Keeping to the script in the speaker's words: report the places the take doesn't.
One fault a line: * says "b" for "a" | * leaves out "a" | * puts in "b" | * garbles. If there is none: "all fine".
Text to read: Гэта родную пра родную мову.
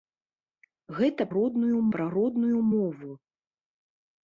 all fine